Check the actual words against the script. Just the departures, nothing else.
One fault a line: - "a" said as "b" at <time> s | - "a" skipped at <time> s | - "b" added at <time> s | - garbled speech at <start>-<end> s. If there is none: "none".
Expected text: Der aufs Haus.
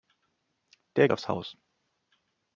none